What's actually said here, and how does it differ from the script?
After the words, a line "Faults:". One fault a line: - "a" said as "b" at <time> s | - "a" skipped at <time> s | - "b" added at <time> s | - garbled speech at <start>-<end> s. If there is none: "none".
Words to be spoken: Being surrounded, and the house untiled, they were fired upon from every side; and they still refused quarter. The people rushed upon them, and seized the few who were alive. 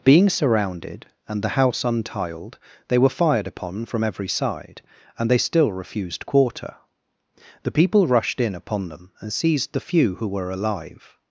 Being surrounded, and the house untiled, they were fired upon from every side; and they still refused quarter. The people rushed in upon them, and seized the few who were alive.
Faults:
- "in" added at 8.4 s